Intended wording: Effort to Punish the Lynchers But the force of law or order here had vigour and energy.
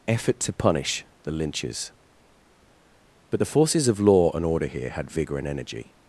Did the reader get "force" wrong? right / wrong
wrong